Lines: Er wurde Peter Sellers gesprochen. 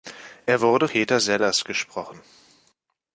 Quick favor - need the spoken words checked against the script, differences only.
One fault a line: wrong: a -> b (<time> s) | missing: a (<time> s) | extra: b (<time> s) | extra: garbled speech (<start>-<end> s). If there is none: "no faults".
no faults